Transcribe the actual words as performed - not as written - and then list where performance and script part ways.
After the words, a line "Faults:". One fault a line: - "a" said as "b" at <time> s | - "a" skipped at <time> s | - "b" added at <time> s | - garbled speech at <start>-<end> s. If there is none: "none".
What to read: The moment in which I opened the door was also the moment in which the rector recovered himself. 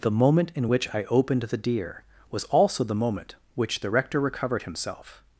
The moment in which I opened the deer was also the moment which the rector recovered himself.
Faults:
- "door" said as "deer" at 1.6 s
- "in" skipped at 3.3 s